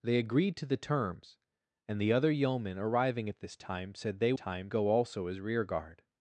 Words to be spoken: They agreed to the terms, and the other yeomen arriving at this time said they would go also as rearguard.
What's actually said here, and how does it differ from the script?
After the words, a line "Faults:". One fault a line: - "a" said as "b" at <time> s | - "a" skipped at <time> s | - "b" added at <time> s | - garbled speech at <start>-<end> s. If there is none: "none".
They agreed to the terms, and the other yeomen arriving at this time said they time go also as rearguard.
Faults:
- "would" said as "time" at 4.3 s